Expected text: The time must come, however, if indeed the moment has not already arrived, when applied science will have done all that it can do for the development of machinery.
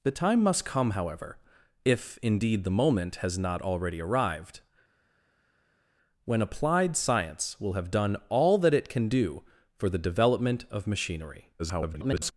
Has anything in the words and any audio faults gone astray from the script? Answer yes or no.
yes